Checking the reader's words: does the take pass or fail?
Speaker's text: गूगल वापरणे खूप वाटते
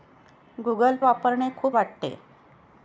pass